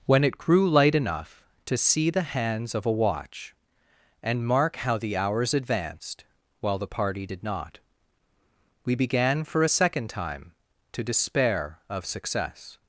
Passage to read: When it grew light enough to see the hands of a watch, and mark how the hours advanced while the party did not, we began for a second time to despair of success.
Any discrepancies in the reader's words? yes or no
no